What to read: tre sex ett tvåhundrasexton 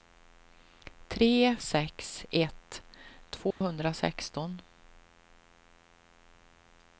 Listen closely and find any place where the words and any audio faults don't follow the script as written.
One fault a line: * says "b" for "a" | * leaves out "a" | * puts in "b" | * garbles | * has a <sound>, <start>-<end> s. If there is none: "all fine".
* has a dropout, 3.5-3.6 s